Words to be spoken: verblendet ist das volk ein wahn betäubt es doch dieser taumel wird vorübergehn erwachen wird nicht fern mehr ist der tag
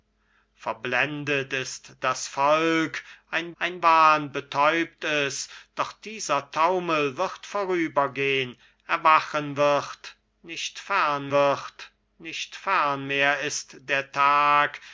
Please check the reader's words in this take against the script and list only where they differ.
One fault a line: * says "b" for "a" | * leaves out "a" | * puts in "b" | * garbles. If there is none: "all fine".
* puts in "ein"
* puts in "wird nicht fern"